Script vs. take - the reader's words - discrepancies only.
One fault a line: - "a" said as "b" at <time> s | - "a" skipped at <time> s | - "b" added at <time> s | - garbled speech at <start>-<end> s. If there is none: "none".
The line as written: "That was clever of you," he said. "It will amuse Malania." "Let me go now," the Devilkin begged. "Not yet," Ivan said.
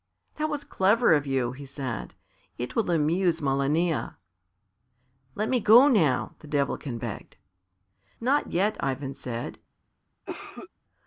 none